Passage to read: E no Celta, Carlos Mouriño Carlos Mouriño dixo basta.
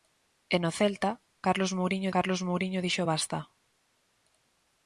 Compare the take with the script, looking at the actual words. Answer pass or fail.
pass